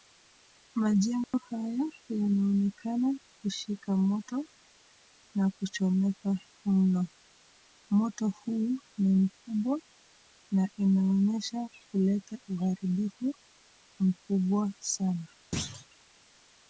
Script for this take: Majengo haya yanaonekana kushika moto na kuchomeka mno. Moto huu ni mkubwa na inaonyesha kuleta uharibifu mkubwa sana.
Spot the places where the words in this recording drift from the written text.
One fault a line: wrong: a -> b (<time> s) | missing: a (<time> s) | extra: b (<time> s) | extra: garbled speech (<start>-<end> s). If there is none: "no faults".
no faults